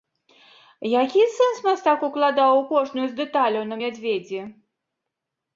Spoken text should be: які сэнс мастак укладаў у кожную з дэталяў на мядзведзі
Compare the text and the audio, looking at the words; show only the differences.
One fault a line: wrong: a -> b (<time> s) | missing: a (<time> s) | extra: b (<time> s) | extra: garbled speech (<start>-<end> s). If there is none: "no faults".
no faults